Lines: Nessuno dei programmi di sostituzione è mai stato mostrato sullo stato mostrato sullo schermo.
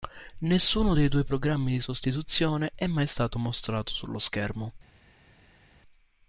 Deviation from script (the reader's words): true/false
true